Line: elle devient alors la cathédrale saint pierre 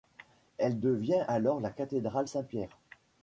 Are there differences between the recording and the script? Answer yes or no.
no